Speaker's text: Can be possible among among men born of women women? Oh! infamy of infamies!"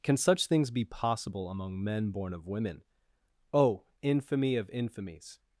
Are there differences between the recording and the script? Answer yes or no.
yes